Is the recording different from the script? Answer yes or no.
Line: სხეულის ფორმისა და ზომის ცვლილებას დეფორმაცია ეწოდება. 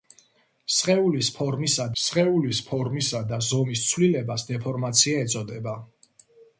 yes